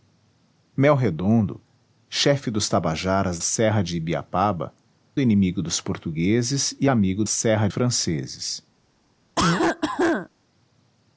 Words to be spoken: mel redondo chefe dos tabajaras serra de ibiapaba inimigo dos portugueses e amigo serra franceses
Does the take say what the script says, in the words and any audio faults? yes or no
no